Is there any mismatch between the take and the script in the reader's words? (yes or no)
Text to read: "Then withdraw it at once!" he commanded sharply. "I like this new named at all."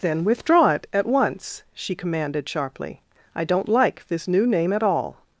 yes